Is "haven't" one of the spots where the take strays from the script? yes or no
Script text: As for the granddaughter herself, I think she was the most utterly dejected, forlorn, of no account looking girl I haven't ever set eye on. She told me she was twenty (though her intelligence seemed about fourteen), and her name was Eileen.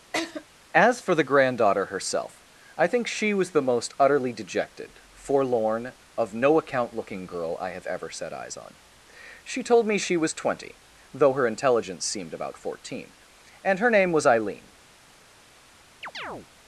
yes